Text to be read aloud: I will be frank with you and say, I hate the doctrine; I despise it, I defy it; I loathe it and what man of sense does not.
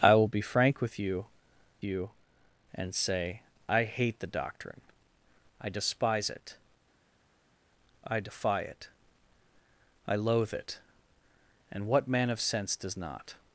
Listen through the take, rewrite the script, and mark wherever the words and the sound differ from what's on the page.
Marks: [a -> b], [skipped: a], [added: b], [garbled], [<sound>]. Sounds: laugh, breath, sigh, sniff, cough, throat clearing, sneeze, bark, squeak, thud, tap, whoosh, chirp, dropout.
I will be frank with you [added: you] and say, I hate the doctrine; I despise it, I defy it; I loathe it and what man of sense does not.